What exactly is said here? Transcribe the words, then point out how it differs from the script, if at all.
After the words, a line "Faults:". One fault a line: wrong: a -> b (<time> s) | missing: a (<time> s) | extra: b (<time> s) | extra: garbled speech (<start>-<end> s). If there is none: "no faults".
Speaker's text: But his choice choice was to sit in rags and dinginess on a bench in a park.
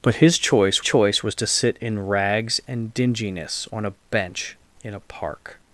But his choice choice was to sit in rags and dinginess on a bench in a park.
Faults:
no faults